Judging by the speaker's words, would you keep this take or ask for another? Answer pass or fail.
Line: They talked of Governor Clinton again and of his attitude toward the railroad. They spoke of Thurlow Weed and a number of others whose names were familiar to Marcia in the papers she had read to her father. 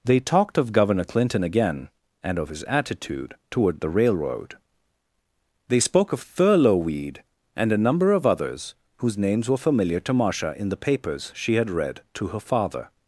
pass